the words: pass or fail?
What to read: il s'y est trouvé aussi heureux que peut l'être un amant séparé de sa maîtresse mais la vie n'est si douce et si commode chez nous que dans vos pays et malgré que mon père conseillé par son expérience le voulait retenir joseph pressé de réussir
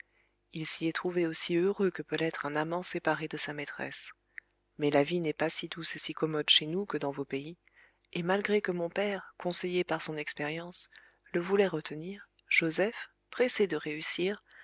fail